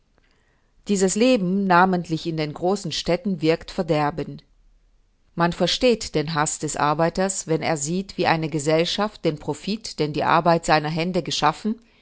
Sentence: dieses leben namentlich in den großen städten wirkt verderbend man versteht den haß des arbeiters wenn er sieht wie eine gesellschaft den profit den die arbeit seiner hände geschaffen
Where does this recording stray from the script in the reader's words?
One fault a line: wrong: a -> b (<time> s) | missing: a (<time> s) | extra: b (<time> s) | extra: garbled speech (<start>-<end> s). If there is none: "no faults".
no faults